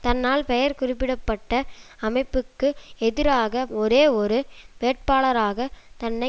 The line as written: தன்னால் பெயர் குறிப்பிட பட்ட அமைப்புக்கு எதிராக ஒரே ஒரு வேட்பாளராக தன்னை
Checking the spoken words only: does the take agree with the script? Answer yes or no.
yes